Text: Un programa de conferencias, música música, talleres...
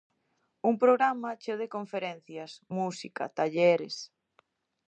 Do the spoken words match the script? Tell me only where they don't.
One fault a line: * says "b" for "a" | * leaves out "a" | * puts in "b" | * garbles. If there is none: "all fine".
* puts in "cheo"
* leaves out "música"